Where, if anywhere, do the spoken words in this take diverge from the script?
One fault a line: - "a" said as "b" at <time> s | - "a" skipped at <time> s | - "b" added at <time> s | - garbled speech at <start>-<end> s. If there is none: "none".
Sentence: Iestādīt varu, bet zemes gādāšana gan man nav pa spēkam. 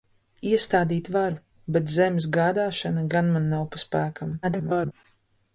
- garbled speech at 4.4-4.9 s